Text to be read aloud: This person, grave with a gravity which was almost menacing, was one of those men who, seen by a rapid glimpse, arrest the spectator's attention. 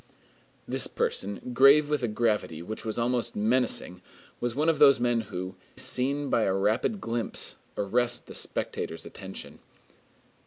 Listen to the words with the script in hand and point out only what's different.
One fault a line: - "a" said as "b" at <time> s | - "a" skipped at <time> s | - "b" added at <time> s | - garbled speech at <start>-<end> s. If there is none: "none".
none